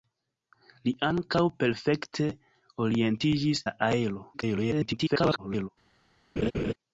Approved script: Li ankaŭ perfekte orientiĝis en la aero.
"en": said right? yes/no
no